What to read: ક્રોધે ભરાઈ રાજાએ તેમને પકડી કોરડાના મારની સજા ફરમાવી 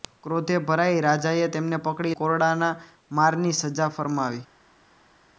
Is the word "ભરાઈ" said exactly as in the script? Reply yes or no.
yes